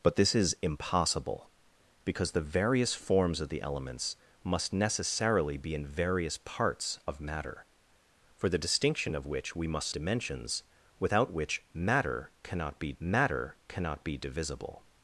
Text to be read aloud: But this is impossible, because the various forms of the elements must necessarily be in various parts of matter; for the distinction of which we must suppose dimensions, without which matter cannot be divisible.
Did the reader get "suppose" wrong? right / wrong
wrong